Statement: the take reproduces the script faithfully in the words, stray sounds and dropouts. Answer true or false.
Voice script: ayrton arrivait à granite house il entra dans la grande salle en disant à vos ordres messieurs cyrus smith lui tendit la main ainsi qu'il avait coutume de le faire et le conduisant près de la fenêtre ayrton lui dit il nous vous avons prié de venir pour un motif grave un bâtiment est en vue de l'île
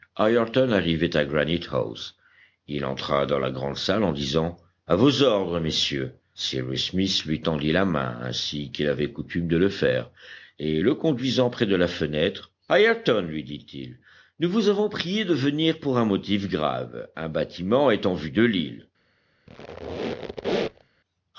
false